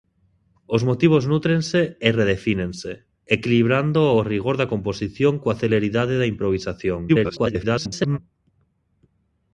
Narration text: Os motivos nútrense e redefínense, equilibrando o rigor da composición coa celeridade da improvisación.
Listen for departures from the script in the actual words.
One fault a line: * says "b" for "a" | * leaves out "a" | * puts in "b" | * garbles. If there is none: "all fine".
* garbles